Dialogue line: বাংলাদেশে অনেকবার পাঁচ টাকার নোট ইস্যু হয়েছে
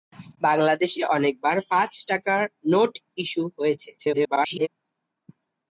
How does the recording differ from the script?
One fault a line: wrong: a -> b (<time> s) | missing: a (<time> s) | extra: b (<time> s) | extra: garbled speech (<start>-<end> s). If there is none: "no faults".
extra: garbled speech (4.0-4.7 s)